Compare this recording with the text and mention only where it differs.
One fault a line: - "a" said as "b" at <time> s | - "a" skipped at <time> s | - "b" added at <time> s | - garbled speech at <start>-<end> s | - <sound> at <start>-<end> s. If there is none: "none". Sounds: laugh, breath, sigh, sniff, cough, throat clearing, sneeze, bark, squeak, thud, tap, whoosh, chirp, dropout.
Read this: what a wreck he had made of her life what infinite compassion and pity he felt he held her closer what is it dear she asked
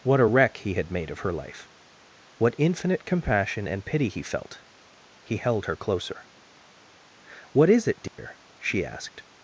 - dropout at 8.1-8.2 s